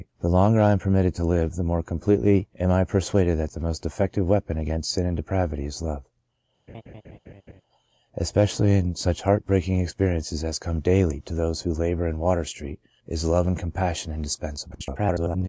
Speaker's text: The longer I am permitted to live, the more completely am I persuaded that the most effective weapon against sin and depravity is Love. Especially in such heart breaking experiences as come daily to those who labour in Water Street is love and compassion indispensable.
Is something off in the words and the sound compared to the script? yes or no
yes